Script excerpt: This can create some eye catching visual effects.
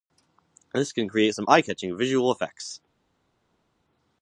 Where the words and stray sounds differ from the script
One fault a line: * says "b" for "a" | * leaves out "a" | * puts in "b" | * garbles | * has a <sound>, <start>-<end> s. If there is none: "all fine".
all fine